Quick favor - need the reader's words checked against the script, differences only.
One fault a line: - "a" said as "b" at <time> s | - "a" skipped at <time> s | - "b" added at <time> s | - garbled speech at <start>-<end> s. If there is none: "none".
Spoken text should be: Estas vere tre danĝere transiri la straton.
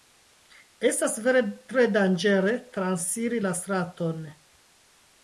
none